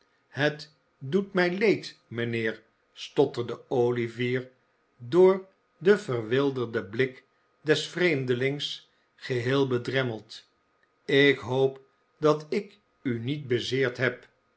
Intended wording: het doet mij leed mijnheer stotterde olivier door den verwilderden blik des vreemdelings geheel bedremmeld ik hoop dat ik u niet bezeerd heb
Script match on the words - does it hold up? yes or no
yes